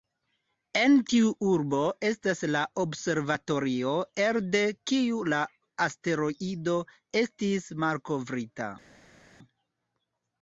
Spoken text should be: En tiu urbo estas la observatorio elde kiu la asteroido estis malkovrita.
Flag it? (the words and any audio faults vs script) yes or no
no